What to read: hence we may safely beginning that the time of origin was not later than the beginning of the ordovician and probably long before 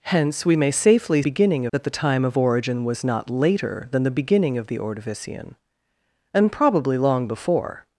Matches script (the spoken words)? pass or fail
pass